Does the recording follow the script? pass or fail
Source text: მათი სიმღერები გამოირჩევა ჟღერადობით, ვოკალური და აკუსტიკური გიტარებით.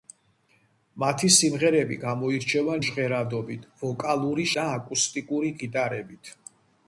pass